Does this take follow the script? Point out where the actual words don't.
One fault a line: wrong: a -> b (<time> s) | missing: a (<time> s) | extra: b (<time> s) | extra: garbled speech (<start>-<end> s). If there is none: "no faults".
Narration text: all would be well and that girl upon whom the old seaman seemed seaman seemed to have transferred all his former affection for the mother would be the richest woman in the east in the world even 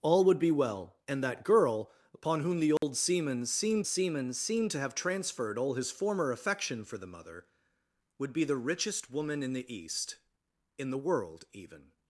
no faults